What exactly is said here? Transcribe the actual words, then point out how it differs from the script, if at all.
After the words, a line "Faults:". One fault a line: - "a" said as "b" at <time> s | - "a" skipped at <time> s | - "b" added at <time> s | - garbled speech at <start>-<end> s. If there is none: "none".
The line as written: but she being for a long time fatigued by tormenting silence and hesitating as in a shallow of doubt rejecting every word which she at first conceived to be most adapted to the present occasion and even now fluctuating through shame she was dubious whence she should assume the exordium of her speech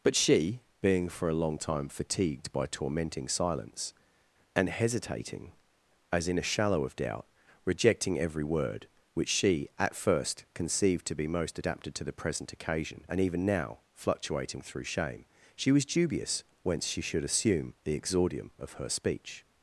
but she being for a long time fatigued by tormenting silence and hesitating as in a shallow of doubt rejecting every word which she at first conceived to be most adapted to the present occasion and even now fluctuating through shame she was dubious whence she should assume the exordium of her speech
Faults:
none